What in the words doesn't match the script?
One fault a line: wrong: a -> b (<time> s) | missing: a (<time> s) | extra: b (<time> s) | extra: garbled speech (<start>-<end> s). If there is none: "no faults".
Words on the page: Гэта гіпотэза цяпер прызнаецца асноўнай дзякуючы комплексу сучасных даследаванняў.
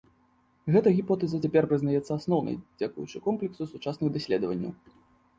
no faults